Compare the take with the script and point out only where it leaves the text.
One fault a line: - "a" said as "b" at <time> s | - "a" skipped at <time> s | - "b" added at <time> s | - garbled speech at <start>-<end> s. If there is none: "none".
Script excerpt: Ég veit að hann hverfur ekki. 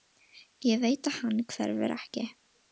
none